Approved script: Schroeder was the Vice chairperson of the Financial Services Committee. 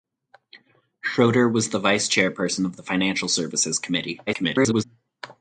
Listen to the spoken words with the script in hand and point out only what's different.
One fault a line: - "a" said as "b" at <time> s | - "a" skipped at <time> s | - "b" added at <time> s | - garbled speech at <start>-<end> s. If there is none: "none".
- garbled speech at 4.3-4.8 s